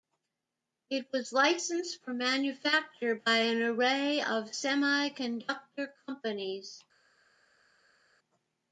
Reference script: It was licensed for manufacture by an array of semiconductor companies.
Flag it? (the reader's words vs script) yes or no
no